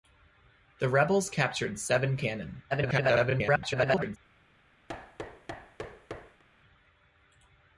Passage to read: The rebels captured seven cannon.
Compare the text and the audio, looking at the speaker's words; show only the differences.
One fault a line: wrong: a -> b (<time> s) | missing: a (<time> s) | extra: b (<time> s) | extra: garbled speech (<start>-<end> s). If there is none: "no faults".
extra: garbled speech (2.7-4.2 s)